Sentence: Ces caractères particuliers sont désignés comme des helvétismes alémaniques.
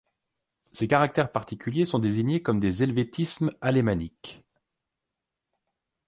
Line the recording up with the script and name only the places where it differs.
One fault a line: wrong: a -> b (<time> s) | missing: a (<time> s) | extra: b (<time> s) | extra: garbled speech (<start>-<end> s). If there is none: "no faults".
no faults